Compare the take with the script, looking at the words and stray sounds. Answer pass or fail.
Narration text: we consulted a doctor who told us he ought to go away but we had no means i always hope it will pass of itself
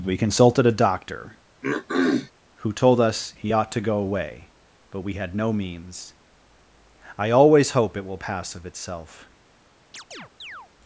fail